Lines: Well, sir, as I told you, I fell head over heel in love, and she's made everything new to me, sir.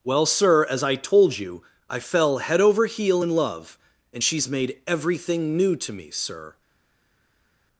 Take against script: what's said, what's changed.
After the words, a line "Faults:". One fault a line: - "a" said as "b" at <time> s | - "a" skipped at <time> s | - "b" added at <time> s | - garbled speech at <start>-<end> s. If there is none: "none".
Well, sir, as I told you, I fell head over heel in love, and she's made everything new to me, sir.
Faults:
none